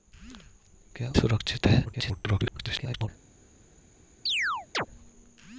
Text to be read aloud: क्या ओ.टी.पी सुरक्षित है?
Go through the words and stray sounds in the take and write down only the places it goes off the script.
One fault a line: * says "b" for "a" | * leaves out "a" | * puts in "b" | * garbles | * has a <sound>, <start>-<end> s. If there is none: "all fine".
* leaves out "ओ.टी.पी"
* garbles
* has a chirp, 4.3-4.9 s